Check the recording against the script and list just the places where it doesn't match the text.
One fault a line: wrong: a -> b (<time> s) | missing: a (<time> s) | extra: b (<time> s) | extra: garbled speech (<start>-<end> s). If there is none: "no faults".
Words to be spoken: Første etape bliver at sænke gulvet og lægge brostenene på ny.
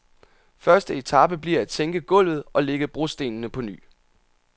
no faults